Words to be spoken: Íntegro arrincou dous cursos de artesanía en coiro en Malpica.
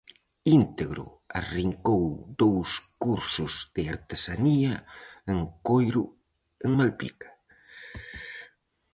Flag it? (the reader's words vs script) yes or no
no